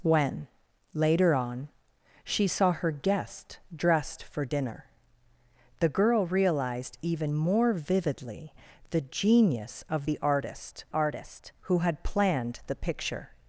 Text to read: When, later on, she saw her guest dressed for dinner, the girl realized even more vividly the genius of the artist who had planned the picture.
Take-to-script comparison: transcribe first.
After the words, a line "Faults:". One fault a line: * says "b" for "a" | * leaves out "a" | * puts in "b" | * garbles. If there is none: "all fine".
When, later on, she saw her guest dressed for dinner, the girl realized even more vividly the genius of the artist artist who had planned the picture.
Faults:
* puts in "artist"